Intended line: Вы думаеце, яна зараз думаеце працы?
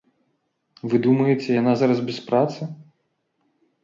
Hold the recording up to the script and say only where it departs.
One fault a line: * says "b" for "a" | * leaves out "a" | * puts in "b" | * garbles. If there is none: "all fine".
* says "без" for "думаеце"